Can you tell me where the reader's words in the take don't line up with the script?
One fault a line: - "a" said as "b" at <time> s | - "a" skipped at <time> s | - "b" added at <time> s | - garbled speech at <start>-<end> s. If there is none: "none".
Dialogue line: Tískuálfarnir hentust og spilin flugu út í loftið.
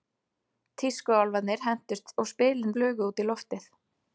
none